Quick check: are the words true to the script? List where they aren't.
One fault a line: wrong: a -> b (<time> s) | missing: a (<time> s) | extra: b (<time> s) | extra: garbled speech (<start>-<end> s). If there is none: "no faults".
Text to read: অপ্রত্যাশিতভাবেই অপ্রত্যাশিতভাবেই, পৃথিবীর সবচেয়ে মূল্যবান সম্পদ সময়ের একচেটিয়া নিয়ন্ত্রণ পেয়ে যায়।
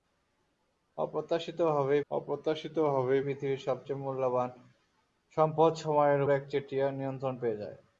no faults